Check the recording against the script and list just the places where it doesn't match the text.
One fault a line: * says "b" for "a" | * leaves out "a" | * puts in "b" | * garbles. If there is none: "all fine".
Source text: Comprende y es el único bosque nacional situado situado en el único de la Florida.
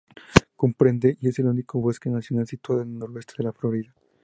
* leaves out "situado"
* says "noroeste" for "único"